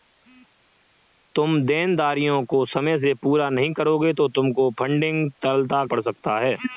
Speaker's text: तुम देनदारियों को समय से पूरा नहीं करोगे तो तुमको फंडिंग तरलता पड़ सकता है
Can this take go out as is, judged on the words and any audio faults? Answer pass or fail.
pass